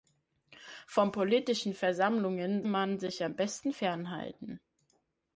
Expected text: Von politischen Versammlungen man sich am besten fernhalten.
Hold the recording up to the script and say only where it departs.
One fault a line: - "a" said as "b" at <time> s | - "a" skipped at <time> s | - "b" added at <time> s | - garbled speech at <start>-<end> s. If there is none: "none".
none